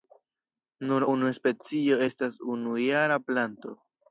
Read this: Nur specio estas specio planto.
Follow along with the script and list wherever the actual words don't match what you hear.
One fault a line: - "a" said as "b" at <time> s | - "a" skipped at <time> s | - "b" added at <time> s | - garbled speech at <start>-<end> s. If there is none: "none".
- "unu" added at 1.1 s
- "specio" said as "unujara" at 2.6 s